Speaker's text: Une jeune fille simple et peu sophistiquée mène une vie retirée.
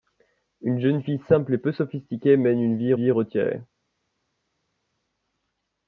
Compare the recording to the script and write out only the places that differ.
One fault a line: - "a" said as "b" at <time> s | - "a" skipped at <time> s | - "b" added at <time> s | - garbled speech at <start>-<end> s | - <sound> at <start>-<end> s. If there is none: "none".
- "vie" added at 2.9 s